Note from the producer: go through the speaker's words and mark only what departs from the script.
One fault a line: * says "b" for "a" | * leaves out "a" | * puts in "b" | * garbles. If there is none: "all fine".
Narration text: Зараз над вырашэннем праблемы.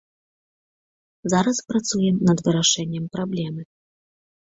* puts in "працуем"